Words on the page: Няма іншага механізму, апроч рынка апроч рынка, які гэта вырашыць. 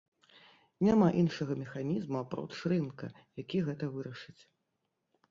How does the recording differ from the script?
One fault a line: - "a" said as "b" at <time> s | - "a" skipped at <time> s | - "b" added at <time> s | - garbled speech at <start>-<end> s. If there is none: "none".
- "апроч рынка" skipped at 3.1 s